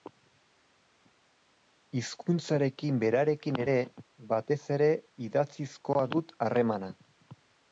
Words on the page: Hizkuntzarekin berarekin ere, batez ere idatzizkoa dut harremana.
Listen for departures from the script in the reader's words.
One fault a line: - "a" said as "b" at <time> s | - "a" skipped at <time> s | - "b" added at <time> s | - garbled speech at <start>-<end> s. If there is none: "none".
none